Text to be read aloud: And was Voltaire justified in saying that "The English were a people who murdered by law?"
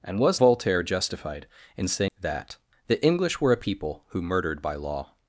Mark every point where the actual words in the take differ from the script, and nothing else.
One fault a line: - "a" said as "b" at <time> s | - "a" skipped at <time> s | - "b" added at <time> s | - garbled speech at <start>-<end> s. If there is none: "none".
none